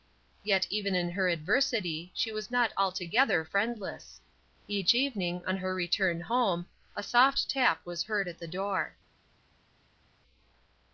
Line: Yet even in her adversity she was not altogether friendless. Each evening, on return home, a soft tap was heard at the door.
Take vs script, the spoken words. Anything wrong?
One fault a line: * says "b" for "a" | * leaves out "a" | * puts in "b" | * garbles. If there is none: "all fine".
* puts in "her"